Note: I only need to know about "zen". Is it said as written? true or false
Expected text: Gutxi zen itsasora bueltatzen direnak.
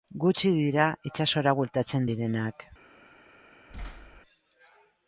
false